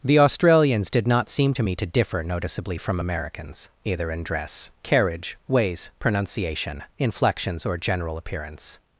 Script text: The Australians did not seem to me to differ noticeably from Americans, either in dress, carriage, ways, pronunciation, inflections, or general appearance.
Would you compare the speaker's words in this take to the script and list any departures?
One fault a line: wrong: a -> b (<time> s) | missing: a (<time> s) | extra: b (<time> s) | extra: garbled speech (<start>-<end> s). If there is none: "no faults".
no faults